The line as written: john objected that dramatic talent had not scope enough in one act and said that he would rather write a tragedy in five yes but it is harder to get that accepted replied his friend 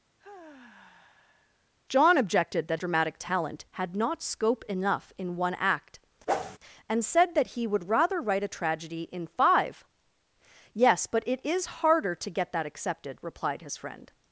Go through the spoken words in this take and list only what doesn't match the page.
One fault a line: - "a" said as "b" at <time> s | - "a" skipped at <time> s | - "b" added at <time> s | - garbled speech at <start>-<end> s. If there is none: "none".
none